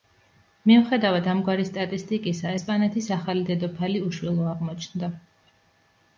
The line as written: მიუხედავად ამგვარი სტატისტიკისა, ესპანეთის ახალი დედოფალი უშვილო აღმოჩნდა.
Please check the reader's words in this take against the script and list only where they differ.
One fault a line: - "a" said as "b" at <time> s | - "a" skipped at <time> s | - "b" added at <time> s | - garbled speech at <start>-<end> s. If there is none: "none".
none